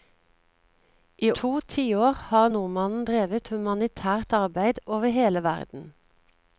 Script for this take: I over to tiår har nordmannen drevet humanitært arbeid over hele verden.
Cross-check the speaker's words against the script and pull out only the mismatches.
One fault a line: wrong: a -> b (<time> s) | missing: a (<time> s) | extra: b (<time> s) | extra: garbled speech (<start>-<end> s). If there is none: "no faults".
missing: over (1.3 s)